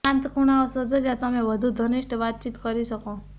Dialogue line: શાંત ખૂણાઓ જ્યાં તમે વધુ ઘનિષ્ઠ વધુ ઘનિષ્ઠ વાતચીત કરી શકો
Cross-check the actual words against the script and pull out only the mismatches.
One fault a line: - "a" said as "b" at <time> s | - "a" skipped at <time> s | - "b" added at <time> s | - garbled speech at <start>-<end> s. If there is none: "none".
- "શોધો" added at 0.7 s
- "વધુ ઘનિષ્ઠ" skipped at 2.2 s